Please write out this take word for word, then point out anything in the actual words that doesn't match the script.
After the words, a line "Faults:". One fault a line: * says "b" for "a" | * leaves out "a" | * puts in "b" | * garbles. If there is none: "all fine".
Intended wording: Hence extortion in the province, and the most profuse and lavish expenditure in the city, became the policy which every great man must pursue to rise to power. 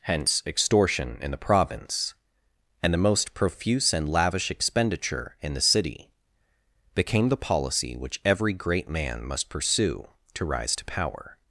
Hence extortion in the province, and the most profuse and lavish expenditure in the city, became the policy which every great man must pursue to rise to power.
Faults:
all fine